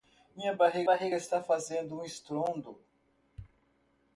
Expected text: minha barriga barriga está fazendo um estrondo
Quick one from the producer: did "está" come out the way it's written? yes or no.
yes